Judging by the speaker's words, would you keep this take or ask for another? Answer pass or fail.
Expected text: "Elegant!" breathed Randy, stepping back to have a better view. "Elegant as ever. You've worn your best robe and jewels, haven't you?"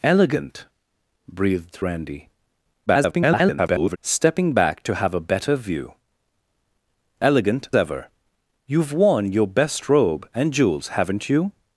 fail